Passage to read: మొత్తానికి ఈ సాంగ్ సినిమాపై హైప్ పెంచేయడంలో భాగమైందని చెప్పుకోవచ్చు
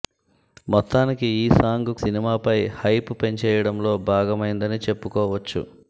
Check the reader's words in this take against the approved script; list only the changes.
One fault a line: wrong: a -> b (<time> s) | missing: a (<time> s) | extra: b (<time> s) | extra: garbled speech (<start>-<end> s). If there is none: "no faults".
no faults